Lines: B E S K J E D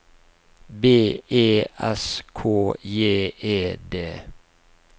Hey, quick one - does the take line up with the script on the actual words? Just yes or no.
yes